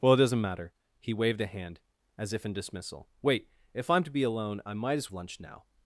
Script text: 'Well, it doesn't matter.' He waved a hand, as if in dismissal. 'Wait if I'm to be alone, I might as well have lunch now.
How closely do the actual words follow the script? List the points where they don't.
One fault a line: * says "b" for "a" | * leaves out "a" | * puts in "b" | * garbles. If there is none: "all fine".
* leaves out "well have"